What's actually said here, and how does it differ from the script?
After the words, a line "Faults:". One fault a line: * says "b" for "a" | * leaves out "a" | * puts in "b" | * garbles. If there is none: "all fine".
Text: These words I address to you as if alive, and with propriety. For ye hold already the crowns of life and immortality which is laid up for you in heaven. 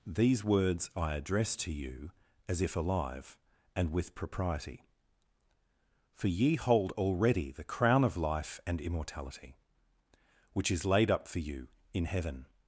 These words I address to you as if alive, and with propriety. For ye hold already the crown of life and immortality which is laid up for you in heaven.
Faults:
* says "crown" for "crowns"